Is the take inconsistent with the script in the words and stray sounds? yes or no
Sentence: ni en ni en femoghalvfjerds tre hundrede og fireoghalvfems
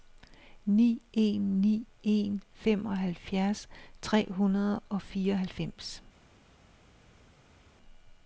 no